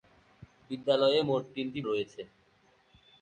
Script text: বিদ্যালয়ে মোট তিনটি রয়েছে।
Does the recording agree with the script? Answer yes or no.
yes